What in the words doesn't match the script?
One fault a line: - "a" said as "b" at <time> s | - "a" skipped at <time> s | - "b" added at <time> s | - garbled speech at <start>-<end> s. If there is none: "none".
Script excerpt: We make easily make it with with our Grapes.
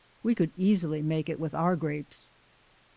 - "make" said as "could" at 0.3 s
- "with" skipped at 1.5 s